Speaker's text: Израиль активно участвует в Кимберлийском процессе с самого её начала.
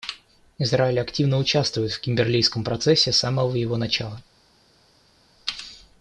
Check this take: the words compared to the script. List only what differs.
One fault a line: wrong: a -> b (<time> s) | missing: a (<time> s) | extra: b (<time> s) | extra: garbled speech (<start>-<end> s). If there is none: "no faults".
wrong: её -> его (3.6 s)